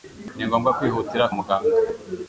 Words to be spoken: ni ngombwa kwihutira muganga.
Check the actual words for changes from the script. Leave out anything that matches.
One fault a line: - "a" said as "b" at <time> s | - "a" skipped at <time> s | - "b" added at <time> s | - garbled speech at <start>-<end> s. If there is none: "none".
none